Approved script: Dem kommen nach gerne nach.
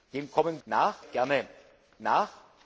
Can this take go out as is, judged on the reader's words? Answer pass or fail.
pass